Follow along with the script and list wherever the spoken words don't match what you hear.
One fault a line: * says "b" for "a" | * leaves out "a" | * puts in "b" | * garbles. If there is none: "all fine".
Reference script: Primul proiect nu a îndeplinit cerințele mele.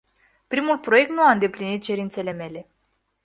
all fine